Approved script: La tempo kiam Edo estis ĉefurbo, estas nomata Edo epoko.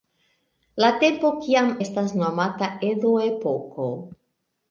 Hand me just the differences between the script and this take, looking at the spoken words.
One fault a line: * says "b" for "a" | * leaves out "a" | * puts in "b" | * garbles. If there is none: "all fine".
* leaves out "Edo estis ĉefurbo"